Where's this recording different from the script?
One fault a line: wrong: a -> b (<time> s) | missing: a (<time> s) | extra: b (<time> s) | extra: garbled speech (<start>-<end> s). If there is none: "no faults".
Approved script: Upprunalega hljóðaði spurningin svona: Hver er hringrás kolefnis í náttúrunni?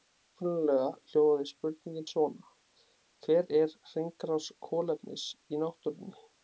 no faults